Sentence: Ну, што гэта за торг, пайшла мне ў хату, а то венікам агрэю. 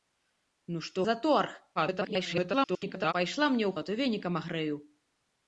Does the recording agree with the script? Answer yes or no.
no